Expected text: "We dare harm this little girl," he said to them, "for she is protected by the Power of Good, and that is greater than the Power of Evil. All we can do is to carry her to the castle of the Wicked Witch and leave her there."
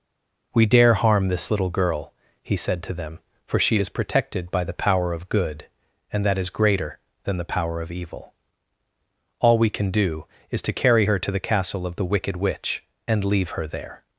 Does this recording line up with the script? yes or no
yes